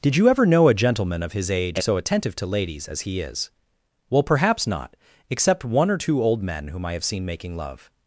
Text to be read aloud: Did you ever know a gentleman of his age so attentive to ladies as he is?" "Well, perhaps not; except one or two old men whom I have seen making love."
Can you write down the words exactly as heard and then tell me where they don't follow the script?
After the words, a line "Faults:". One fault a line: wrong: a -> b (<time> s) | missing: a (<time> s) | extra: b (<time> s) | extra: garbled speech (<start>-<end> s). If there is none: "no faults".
Did you ever know a gentleman of his age so attentive to ladies as he is?" "Well, perhaps not; except one or two old men whom I have seen making love."
Faults:
no faults